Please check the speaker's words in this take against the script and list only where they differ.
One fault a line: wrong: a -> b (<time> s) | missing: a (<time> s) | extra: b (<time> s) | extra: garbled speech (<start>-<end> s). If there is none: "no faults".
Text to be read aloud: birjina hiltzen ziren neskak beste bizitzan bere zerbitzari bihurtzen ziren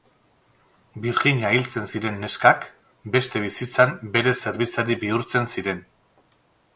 no faults